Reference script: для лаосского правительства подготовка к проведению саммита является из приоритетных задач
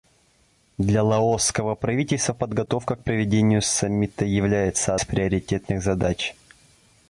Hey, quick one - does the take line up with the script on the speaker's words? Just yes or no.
yes